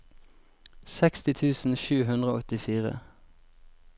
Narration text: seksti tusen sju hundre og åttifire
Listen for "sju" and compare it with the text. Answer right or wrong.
right